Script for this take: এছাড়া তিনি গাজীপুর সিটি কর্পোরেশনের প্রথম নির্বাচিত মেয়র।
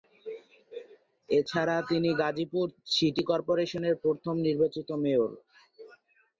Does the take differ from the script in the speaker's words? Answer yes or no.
no